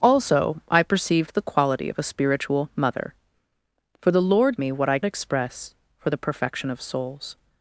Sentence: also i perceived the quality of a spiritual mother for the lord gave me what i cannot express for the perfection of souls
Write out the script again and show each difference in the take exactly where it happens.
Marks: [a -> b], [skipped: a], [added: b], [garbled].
also i perceived the quality of a spiritual mother for the lord [skipped: gave] me what i [skipped: cannot] express for the perfection of souls